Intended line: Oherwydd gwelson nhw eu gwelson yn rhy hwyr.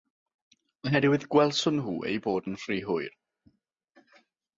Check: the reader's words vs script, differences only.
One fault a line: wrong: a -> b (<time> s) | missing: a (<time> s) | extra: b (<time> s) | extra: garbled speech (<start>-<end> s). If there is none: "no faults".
wrong: gwelson -> bod (2.3 s)